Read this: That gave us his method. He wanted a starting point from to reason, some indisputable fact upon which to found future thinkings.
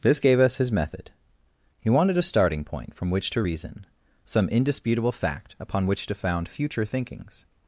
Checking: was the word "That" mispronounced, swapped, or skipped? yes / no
yes